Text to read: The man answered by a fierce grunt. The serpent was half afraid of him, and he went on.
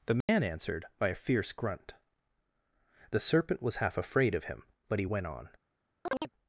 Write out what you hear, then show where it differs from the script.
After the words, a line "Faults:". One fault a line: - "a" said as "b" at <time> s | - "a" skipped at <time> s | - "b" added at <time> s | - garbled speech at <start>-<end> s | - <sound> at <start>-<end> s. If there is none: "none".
The man answered by a fierce grunt. The serpent was half afraid of him, but he went on.
Faults:
- dropout at 0.2-0.3 s
- "and" said as "but" at 4.9 s
- chirp at 6.1-6.3 s